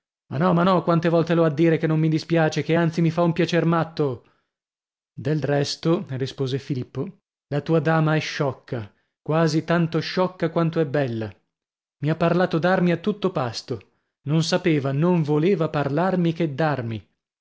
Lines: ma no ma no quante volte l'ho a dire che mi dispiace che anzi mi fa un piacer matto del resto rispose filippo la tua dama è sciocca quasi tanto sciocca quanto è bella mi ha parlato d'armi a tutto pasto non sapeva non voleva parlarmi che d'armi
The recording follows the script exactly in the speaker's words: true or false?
false